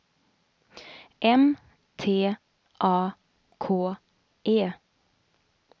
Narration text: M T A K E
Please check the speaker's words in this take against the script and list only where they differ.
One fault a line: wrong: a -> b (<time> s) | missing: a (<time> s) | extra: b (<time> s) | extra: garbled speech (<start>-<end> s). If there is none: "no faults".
no faults